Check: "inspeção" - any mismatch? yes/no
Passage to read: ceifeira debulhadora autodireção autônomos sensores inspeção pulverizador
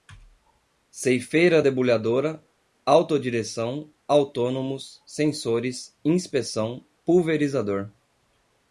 no